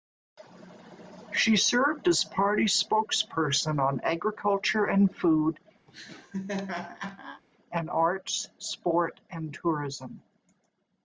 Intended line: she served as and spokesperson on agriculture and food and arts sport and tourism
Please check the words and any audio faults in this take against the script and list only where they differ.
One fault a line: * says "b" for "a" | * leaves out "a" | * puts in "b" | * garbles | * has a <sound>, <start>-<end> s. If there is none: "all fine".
* says "party" for "and"
* has a laugh, 5.9-7.4 s